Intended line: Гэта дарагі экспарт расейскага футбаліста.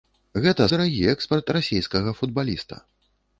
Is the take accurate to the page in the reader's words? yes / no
yes